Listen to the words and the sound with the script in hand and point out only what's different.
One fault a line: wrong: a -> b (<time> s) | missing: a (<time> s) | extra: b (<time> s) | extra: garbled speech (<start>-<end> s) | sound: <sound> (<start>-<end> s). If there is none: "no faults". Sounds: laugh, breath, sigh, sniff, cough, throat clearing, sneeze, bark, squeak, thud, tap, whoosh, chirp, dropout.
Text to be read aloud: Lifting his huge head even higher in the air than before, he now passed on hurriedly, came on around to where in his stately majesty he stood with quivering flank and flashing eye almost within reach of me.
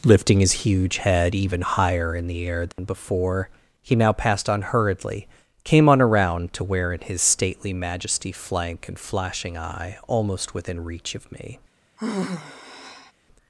sound: dropout (2.7-2.8 s)
missing: he stood with quivering (8.3 s)
sound: sigh (12.0-13.1 s)